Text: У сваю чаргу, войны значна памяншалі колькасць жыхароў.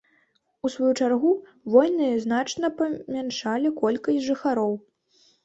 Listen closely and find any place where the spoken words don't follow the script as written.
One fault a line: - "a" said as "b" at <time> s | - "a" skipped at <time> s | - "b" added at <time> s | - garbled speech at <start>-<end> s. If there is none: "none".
none